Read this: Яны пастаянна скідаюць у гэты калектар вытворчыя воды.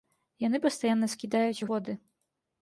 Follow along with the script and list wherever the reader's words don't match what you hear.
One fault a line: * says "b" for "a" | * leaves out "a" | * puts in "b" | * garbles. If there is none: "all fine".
* leaves out "гэты калектар вытворчыя"